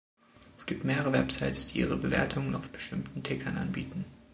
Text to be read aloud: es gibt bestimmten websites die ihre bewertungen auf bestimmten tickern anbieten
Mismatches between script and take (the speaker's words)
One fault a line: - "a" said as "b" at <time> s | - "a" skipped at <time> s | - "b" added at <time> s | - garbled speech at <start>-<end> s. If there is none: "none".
- "bestimmten" said as "mehrere" at 0.8 s